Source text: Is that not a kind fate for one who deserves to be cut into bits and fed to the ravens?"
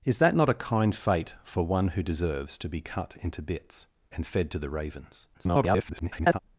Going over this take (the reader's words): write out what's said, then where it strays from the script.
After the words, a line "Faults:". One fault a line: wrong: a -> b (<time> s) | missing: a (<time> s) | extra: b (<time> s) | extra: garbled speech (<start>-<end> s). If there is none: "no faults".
Is that not a kind fate for one who deserves to be cut into bits and fed to the ravens?" [garbled]
Faults:
extra: garbled speech (5.3-6.4 s)